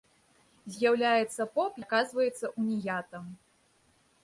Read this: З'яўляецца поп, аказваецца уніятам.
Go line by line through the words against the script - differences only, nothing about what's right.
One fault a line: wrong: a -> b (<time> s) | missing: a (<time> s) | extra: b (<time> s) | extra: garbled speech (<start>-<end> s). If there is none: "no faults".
no faults